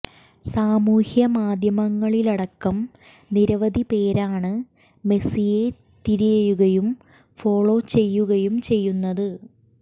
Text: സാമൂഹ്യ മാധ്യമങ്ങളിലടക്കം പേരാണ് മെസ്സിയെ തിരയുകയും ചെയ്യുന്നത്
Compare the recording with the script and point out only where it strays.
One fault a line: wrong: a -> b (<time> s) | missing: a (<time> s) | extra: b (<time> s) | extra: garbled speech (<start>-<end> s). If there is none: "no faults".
extra: നിരവധി (3.3 s)
extra: ഫോളോ ചെയ്യുകയും (7.4 s)